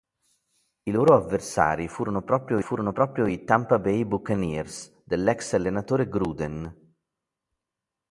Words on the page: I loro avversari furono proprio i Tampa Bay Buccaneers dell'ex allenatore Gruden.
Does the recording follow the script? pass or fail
fail